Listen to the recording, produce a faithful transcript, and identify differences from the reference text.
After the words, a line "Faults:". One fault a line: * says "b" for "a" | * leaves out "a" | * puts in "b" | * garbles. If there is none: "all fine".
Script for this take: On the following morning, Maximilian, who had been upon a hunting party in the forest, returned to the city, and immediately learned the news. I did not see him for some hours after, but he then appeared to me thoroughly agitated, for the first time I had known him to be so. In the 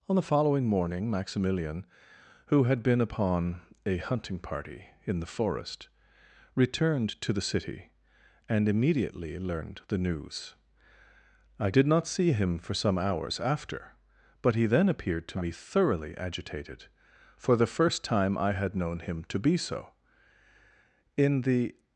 On the following morning, Maximilian, who had been upon a hunting party in the forest, returned to the city, and immediately learned the news. I did not see him for some hours after, but he then appeared to me thoroughly agitated, for the first time I had known him to be so. In the
Faults:
all fine